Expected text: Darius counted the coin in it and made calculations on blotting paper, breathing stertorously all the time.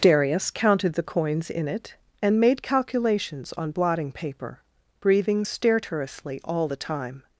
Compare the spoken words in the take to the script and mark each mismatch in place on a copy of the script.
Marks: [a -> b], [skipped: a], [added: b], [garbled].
Darius counted the [coin -> coins] in it and made calculations on blotting paper, breathing stertorously all the time.